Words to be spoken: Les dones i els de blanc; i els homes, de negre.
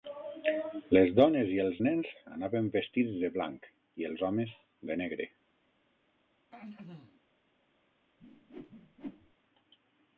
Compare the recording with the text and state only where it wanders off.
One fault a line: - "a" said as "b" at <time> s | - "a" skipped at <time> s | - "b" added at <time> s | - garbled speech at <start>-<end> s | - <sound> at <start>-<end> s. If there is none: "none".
- "nens anaven vestits" added at 1.9 s
- throat clearing at 6.5-7.2 s
- whoosh at 8.2-9.4 s